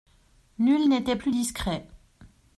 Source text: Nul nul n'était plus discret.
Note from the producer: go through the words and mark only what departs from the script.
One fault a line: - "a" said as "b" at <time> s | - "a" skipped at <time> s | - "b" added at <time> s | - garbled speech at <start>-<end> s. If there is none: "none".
- "nul" skipped at 0.9 s